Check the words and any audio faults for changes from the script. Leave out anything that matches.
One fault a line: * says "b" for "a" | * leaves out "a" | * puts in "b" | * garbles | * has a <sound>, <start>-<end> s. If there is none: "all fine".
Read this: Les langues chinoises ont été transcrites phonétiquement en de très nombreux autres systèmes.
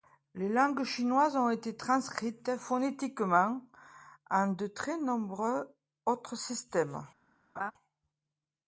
* has a laugh, 7.6-7.7 s